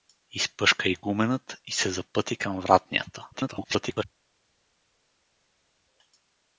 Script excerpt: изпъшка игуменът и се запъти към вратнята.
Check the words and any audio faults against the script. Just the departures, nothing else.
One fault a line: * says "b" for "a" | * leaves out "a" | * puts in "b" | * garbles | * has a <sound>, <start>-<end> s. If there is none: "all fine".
* garbles